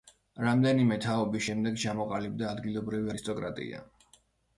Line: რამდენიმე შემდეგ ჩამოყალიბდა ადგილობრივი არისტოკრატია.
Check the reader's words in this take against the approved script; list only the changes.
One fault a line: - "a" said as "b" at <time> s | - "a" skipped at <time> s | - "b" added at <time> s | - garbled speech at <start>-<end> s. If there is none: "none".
- "თაობის" added at 1.0 s